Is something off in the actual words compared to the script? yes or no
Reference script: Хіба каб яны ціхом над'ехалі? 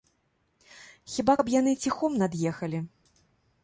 no